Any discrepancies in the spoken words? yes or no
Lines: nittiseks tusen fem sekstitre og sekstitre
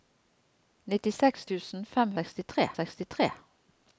no